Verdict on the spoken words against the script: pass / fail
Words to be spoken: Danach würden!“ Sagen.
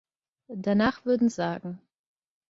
pass